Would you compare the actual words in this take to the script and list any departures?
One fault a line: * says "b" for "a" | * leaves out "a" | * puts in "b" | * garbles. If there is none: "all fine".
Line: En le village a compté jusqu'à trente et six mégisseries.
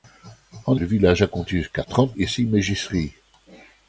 all fine